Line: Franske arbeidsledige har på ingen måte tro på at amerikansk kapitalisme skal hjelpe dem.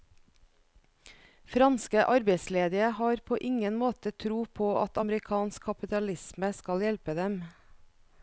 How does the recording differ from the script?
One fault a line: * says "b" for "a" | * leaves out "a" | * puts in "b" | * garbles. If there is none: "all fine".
all fine